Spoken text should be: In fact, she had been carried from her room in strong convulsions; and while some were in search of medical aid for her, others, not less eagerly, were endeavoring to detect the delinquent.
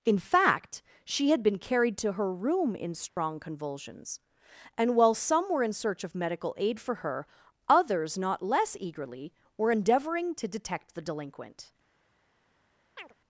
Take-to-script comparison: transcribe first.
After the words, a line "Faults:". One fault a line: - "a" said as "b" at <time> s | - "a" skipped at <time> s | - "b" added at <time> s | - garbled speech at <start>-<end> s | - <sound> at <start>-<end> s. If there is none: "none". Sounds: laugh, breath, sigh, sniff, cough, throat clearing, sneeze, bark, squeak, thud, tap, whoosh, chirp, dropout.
In fact, she had been carried to her room in strong convulsions; and while some were in search of medical aid for her, others, not less eagerly, were endeavoring to detect the delinquent.
Faults:
- "from" said as "to" at 2.0 s
- dropout at 3.1-3.2 s
- chirp at 13.0-13.1 s